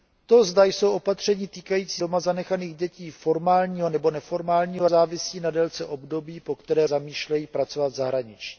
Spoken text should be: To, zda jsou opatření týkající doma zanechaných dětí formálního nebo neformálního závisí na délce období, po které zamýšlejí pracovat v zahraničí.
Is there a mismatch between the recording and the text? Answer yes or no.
no